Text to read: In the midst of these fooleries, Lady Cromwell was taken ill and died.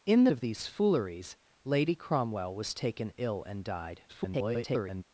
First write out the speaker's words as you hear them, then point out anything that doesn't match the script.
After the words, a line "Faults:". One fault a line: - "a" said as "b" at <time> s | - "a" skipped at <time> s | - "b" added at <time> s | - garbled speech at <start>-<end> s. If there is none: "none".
In the of these fooleries, Lady Cromwell was taken ill and died. [garbled]
Faults:
- "midst" skipped at 0.3 s
- garbled speech at 4.1-5.0 s